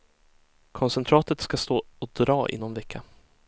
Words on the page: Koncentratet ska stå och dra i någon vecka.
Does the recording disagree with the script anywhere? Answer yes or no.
no